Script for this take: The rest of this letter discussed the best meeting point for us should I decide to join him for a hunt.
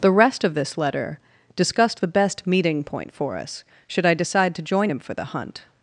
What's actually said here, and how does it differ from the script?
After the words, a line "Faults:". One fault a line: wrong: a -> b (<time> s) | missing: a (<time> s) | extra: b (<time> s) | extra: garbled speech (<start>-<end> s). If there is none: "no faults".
The rest of this letter discussed the best meeting point for us should I decide to join him for the hunt.
Faults:
wrong: a -> the (5.1 s)